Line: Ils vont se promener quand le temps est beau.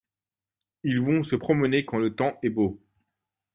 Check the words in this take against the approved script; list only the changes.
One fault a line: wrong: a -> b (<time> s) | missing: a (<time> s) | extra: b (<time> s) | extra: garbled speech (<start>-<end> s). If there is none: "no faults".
no faults